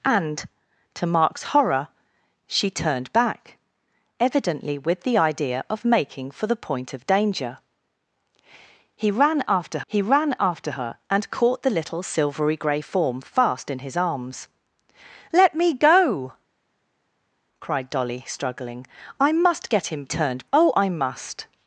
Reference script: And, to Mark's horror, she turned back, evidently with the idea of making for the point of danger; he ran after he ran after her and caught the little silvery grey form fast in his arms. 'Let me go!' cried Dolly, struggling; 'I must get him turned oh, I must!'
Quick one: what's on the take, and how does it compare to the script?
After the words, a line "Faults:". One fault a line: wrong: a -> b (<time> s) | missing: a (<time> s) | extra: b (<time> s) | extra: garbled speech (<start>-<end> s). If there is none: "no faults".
And, to Mark's horror, she turned back, evidently with the idea of making for the point of danger; he ran after he ran after her and caught the little silvery grey form fast in his arms. 'Let me go!' cried Dolly, struggling; 'I must get him turned oh, I must!'
Faults:
no faults